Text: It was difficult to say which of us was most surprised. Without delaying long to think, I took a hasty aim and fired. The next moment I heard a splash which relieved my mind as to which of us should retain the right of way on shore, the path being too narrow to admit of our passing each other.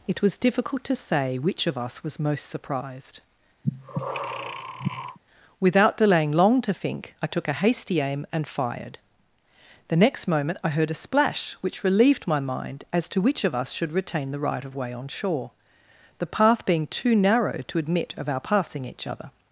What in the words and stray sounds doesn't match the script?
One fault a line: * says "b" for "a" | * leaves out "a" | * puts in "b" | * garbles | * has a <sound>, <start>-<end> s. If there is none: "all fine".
* has a breath, 3.6-5.2 s